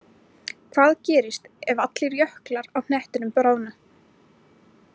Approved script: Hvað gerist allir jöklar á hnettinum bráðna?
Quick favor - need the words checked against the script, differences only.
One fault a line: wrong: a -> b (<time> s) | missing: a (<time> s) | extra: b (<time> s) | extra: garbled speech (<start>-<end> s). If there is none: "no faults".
extra: ef (1.7 s)